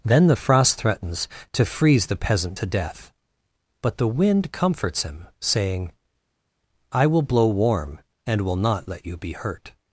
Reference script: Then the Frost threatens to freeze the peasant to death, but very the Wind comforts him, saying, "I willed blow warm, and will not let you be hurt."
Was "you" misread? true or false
false